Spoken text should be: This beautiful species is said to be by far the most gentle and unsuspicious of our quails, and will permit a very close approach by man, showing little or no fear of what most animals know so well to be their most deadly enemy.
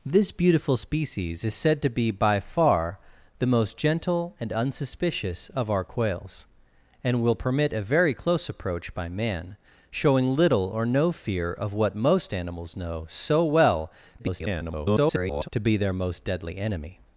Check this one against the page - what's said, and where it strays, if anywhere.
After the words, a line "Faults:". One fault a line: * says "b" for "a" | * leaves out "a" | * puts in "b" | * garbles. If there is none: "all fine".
This beautiful species is said to be by far the most gentle and unsuspicious of our quails, and will permit a very close approach by man, showing little or no fear of what most animals know so well [garbled] to be their most deadly enemy.
Faults:
* garbles